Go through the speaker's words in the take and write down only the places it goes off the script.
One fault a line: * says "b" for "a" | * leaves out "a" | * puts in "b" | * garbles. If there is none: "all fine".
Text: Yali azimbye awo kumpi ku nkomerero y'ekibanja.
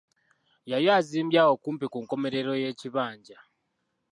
all fine